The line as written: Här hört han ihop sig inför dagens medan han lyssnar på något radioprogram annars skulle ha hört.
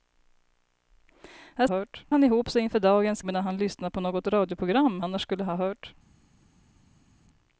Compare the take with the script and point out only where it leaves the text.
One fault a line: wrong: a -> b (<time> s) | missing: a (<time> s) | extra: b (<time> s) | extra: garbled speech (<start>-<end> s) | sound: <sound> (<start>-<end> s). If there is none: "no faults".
no faults